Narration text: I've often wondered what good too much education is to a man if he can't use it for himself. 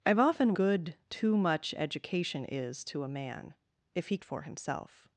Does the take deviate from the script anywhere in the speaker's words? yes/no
yes